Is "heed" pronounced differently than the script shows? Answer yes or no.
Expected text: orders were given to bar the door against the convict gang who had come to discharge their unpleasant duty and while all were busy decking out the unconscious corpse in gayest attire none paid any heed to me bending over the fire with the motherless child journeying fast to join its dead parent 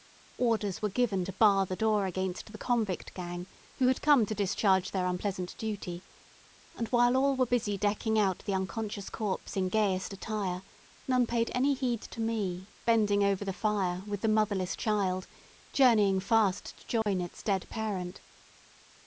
no